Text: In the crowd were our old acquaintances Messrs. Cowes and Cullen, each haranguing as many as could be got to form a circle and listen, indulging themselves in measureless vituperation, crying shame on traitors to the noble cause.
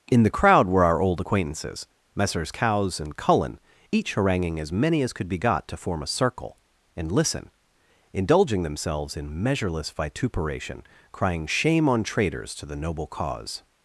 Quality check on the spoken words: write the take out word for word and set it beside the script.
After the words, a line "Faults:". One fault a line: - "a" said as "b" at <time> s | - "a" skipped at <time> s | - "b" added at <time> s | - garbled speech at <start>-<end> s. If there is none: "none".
In the crowd were our old acquaintances Messrs. Cowes and Cullen, each haranguing as many as could be got to form a circle and listen, indulging themselves in measureless vituperation, crying shame on traitors to the noble cause.
Faults:
none